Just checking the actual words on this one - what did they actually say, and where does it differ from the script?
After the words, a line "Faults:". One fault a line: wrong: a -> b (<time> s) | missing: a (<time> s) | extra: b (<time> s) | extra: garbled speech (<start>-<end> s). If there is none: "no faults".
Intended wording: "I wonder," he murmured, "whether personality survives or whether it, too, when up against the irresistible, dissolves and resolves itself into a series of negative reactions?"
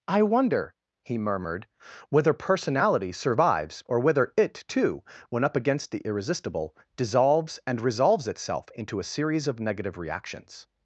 "I wonder," he murmured, "whether personality survives or whether it, too, when up against the irresistible, dissolves and resolves itself into a series of negative reactions?"
Faults:
no faults